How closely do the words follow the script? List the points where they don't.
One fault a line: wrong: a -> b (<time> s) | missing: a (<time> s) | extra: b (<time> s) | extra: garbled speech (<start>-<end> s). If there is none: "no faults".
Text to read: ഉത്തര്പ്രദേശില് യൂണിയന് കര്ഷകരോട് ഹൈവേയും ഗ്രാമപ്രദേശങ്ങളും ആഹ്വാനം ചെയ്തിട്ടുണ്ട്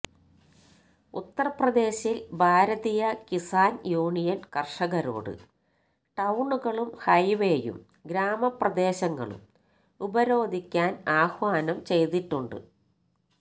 extra: ഭാരതീയ കിസാന് (2.3 s)
extra: ടൌണുകളും (6.2 s)
extra: ഉപരോധിക്കാന് (10.0 s)